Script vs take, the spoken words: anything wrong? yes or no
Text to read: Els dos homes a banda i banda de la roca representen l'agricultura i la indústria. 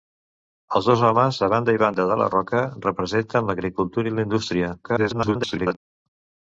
yes